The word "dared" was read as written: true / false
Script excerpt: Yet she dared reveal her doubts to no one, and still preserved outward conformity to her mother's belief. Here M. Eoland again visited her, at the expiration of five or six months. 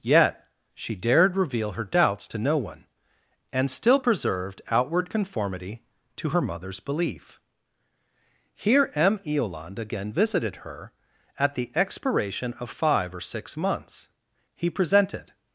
true